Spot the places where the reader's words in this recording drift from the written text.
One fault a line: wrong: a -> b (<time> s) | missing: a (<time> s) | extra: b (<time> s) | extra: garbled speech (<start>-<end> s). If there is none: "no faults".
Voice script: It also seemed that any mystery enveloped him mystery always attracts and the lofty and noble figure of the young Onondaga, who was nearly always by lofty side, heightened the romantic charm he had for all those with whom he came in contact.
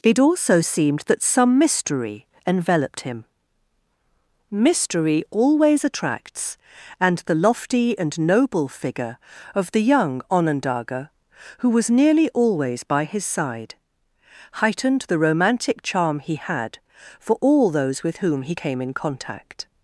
wrong: any -> some (1.2 s)
wrong: lofty -> his (13.0 s)